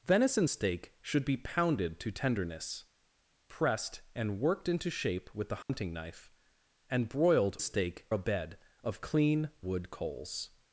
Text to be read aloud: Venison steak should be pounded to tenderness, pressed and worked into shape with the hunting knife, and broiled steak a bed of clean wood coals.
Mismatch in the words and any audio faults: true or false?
true